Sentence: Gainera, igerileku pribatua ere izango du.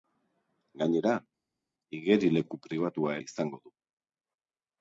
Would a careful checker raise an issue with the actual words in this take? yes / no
yes